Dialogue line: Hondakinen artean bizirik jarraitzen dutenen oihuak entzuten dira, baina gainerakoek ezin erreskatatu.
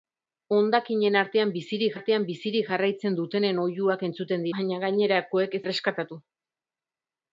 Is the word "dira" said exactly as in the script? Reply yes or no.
no